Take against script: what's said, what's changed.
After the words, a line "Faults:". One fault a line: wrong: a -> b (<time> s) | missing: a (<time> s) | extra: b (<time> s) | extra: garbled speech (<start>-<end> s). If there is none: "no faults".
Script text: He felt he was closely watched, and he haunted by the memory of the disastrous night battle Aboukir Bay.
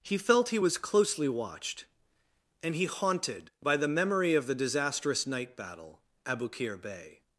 He felt he was closely watched, and he haunted by the memory of the disastrous night battle Aboukir Bay.
Faults:
no faults